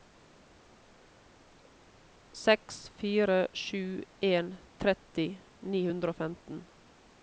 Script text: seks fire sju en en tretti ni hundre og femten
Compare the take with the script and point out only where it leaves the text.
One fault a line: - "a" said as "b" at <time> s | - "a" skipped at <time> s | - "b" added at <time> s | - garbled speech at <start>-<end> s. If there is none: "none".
- "en" skipped at 4.5 s